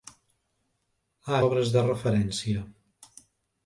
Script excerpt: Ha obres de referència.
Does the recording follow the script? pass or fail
pass